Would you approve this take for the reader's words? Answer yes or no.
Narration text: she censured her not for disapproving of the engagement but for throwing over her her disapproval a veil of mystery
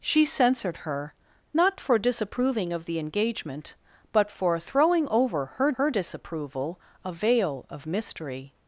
yes